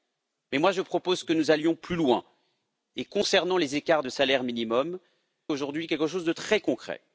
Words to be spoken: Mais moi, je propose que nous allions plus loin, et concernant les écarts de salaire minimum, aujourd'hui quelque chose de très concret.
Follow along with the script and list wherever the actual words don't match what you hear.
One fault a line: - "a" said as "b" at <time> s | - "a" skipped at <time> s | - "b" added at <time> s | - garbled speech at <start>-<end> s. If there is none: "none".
none